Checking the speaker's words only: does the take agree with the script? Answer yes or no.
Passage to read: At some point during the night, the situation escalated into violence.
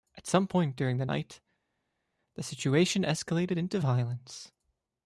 yes